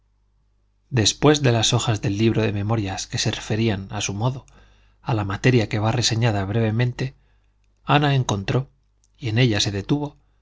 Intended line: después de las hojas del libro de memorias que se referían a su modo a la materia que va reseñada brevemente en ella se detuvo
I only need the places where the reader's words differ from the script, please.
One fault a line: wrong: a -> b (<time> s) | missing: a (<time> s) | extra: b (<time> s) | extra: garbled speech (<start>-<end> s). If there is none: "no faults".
extra: ana encontró y (7.8 s)